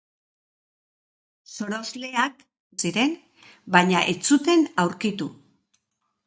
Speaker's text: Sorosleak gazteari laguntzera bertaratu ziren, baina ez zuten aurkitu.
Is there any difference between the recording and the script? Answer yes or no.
yes